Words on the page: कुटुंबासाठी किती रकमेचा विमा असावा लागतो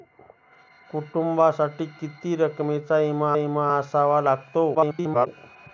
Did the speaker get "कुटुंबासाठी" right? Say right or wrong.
right